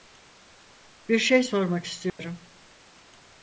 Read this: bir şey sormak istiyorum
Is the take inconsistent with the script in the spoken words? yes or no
no